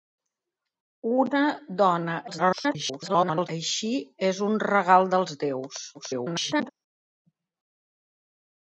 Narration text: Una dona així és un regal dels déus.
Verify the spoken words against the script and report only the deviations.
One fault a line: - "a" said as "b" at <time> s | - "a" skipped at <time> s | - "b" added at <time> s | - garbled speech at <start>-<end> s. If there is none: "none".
- garbled speech at 2.3-3.5 s
- garbled speech at 5.9-6.7 s